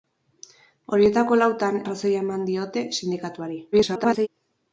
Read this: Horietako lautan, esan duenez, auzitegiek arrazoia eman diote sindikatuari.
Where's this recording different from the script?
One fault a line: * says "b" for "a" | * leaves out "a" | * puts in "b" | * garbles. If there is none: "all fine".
* leaves out "esan duenez auzitegiek"
* garbles